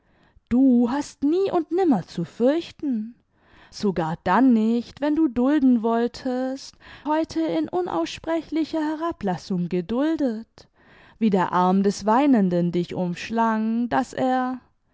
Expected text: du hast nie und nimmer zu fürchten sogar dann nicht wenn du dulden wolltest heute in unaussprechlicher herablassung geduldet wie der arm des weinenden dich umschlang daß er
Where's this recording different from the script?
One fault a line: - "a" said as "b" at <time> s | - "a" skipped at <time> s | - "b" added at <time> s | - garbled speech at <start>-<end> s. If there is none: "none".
none